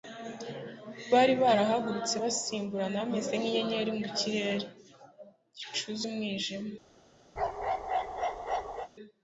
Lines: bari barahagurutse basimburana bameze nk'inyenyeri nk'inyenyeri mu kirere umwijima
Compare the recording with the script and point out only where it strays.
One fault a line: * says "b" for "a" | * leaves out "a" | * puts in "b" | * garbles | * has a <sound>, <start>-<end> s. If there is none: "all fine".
* leaves out "nk'inyenyeri"
* puts in "gicuze"
* has a bark, 7.4-8.9 s